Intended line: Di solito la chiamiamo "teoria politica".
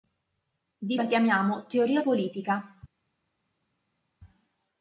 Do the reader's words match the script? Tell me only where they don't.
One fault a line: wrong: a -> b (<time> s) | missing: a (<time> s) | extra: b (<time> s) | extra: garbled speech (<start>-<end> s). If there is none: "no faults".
missing: solito (1.0 s)